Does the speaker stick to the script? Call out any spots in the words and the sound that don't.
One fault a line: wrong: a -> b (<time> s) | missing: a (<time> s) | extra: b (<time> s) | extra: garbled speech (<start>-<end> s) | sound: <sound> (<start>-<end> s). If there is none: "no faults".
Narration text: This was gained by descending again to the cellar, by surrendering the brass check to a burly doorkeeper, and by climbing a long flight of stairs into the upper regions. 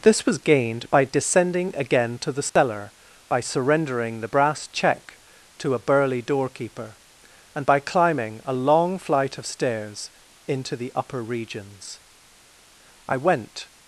sound: dropout (2.5-2.6 s)
extra: I went (13.1 s)